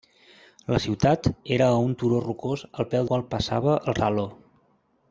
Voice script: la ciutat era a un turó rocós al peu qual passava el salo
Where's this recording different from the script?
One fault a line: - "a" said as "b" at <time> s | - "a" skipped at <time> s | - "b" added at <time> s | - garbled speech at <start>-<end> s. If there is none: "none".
none